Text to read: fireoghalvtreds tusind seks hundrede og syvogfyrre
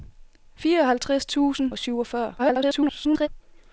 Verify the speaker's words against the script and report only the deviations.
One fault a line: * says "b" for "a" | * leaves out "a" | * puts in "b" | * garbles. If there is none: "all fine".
* leaves out "seks hundrede"
* garbles